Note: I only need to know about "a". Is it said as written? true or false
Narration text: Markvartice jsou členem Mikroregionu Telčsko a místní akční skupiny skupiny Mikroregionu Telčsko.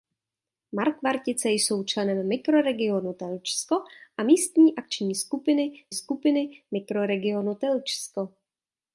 true